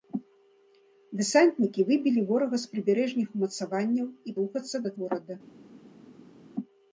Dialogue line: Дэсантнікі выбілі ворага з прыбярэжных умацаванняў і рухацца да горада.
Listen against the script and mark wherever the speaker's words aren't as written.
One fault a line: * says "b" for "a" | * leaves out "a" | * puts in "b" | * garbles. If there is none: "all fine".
all fine